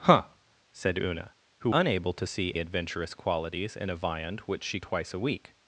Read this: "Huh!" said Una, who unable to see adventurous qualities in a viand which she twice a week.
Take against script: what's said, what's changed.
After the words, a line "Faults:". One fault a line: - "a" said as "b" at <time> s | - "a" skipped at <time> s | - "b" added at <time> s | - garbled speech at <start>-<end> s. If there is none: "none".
"Huh!" said Una, who unable to see adventurous qualities in a viand which she twice a week.
Faults:
none